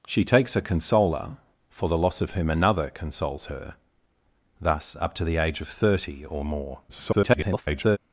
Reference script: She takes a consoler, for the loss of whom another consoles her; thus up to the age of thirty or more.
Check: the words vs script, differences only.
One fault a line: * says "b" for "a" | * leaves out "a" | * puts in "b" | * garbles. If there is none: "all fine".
* garbles